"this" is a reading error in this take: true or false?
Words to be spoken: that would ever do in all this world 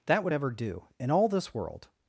false